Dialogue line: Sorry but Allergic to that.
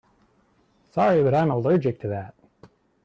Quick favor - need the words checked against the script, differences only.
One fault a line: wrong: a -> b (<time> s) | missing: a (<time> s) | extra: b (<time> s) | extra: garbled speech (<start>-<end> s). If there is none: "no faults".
extra: I'm (1.3 s)